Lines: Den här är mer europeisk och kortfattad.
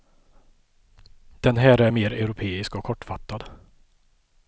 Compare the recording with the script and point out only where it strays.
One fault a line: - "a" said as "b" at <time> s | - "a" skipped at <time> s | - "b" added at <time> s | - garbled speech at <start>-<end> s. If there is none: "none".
none